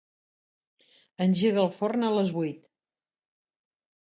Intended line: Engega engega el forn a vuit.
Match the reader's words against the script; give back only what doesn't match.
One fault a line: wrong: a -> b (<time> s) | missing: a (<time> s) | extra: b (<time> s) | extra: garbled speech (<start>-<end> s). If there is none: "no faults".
missing: engega (1.6 s)
extra: les (2.2 s)